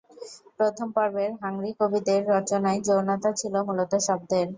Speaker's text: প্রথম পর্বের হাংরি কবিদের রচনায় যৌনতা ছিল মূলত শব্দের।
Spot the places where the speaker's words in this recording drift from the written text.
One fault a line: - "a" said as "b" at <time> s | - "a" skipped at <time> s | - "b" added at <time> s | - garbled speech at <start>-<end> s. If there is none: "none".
none